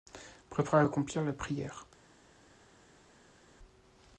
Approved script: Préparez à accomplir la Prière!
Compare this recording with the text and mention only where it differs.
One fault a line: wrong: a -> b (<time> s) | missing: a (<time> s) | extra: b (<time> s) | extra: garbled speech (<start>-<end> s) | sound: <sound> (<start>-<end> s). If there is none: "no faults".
no faults